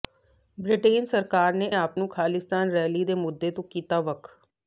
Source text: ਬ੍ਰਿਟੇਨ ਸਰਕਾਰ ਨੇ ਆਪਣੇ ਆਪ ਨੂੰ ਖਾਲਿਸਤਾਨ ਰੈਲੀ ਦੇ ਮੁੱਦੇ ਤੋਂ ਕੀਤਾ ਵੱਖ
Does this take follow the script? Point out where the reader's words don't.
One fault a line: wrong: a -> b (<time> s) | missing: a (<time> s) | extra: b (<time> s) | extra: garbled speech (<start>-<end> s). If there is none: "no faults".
missing: ਆਪਣੇ (1.7 s)